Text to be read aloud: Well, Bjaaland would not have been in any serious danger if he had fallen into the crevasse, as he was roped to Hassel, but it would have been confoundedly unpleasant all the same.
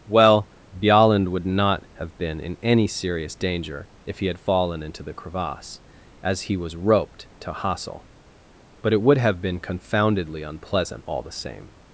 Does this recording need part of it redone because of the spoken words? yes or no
no